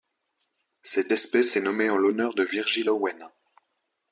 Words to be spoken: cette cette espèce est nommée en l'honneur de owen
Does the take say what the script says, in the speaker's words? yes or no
no